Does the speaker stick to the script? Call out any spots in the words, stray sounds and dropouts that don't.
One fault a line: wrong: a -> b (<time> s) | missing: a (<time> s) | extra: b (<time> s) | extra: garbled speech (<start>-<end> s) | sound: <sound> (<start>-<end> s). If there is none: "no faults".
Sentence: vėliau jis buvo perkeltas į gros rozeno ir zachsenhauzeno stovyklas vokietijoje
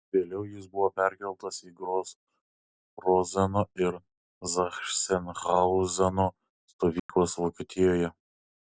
sound: dropout (7.0-7.1 s)